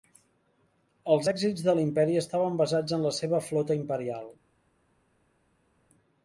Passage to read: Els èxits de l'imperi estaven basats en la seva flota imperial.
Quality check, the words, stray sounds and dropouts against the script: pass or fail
pass